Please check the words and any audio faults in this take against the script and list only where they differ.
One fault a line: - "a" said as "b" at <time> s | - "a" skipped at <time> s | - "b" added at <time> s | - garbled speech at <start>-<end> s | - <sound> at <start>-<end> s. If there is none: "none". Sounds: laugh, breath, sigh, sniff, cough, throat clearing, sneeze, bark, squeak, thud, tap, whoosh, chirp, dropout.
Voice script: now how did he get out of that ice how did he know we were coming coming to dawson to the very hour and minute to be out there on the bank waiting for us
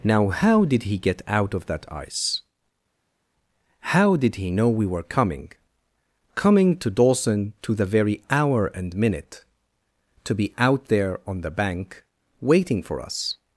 none